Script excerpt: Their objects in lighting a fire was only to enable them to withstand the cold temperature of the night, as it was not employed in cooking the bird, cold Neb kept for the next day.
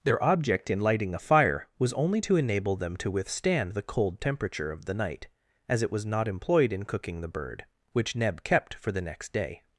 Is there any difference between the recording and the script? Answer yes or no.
yes